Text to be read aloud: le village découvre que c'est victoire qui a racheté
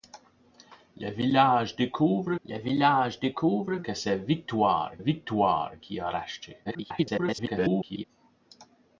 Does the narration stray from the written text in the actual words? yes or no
yes